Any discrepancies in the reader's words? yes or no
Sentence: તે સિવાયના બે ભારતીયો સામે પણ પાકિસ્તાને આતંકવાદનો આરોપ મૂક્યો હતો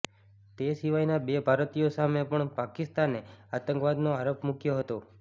no